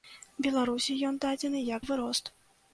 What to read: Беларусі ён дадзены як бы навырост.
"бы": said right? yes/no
no